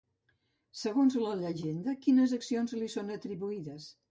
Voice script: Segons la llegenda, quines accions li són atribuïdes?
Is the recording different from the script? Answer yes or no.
no